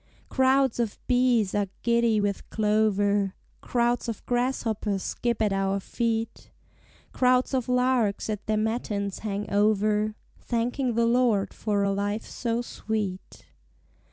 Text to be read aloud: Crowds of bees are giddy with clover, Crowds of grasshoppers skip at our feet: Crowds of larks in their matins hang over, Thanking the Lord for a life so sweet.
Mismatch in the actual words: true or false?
true